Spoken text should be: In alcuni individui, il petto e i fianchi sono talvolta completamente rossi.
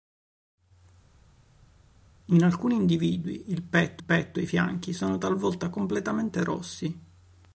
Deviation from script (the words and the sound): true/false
true